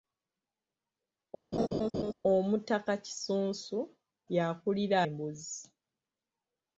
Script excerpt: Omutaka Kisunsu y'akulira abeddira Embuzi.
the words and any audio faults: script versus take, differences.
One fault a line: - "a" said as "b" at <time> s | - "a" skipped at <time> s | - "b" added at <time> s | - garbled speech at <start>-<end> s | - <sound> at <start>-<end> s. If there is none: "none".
- laugh at 1.5-2.1 s
- "abeddira" skipped at 5.0 s